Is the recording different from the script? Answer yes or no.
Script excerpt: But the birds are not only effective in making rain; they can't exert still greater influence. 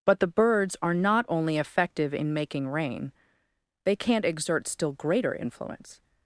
no